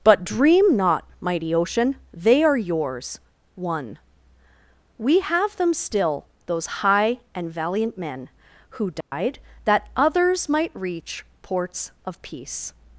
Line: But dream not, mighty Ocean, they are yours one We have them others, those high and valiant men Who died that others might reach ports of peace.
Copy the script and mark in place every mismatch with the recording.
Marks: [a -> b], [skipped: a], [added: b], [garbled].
But dream not, mighty Ocean, they are yours one We have them [others, -> still] those high and valiant men Who died that others might reach ports of peace.